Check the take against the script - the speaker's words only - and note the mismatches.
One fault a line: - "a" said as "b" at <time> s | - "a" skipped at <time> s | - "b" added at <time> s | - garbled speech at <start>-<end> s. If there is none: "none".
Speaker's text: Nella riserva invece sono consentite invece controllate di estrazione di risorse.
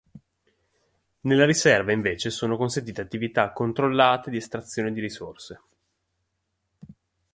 - "invece" said as "attività" at 3.0 s